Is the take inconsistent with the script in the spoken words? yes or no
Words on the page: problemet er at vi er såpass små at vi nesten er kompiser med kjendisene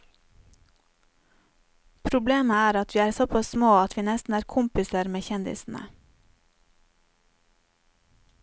no